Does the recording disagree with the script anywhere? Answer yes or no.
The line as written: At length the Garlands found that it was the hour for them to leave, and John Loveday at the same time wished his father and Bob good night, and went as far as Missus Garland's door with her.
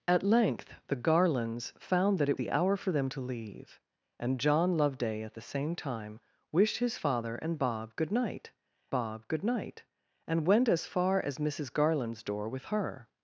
yes